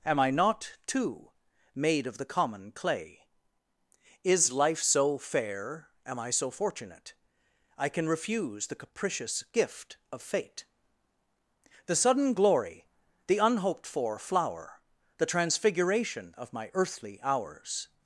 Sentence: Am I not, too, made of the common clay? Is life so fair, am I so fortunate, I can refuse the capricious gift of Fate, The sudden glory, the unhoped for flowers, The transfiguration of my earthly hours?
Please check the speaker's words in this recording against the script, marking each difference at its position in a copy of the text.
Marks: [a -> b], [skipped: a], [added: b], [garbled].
Am I not, too, made of the common clay? Is life so fair, am I so fortunate, I can refuse the capricious gift of Fate, The sudden glory, the unhoped for [flowers, -> flower] The transfiguration of my earthly hours?